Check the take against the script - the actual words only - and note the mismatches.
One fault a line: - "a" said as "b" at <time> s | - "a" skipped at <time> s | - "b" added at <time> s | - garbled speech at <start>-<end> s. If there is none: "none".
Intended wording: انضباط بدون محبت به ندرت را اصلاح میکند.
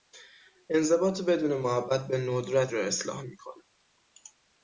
none